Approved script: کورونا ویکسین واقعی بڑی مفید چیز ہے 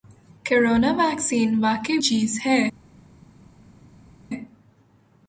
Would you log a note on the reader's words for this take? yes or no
yes